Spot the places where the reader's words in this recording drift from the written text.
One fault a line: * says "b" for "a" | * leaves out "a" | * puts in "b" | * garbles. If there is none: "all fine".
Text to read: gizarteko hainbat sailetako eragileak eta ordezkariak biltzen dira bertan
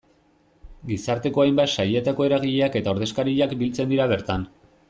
all fine